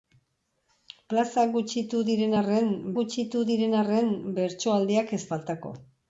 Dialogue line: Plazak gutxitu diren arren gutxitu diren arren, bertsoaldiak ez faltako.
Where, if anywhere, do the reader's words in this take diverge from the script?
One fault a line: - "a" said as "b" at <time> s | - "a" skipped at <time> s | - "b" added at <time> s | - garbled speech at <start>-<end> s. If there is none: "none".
none